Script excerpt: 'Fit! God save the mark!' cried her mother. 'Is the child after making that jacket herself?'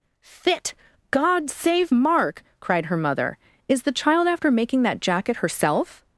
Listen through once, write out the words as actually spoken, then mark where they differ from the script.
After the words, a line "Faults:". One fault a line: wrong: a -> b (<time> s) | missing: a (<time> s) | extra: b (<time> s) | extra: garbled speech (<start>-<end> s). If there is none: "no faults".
'Fit! God save mark!' cried her mother. 'Is the child after making that jacket herself?'
Faults:
missing: the (1.9 s)